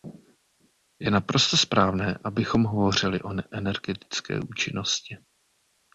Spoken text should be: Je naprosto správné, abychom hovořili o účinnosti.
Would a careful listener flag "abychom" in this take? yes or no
no